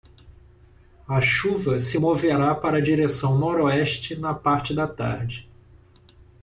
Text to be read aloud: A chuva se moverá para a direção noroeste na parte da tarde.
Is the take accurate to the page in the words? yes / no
yes